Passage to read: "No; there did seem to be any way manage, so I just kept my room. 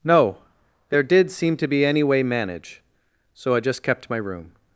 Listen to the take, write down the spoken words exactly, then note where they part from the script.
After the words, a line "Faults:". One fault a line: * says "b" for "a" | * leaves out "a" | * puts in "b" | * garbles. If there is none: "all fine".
"No; there did seem to be any way manage, so I just kept my room.
Faults:
all fine